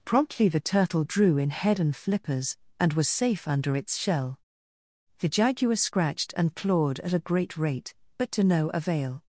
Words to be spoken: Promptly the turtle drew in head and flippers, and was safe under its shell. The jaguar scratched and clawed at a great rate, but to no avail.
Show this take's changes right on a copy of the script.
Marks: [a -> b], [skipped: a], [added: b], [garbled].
Promptly the turtle drew in head and flippers, and was safe under its shell. The jaguar scratched and clawed at a great rate, but to no avail.